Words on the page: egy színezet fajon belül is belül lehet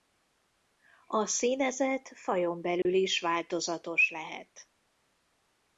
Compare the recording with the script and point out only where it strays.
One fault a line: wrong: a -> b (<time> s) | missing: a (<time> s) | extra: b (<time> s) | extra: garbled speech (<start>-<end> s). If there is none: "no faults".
wrong: egy -> a (1.1 s)
wrong: belül -> változatos (3.2 s)